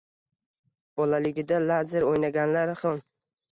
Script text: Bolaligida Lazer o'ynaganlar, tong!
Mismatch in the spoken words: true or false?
false